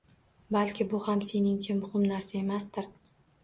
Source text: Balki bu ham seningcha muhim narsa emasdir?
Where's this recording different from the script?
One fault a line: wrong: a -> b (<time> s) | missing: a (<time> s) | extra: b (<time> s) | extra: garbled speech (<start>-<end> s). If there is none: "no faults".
no faults